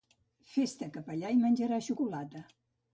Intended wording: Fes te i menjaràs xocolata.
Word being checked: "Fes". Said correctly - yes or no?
yes